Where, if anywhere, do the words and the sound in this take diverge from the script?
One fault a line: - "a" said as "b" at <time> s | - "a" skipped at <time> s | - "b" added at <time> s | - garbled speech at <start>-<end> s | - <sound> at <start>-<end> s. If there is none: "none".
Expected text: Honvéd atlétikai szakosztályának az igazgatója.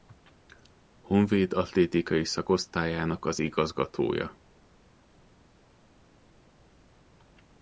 none